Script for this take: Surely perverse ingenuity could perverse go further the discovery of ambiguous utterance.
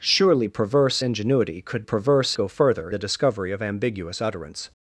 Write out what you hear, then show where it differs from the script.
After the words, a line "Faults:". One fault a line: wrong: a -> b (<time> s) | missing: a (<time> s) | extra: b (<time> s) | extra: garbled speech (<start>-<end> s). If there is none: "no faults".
Surely perverse ingenuity could perverse go further the discovery of ambiguous utterance.
Faults:
no faults